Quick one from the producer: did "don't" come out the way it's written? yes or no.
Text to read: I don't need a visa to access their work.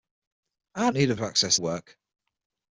no